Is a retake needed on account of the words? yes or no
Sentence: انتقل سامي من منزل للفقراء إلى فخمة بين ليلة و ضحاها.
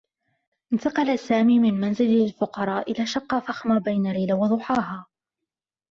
yes